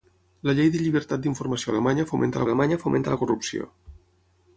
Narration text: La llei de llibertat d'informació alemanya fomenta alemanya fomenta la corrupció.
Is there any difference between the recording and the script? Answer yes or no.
no